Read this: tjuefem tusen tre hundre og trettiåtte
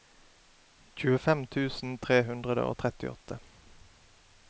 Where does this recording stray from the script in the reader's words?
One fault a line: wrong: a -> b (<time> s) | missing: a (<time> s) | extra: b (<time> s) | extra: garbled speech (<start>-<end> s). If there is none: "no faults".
no faults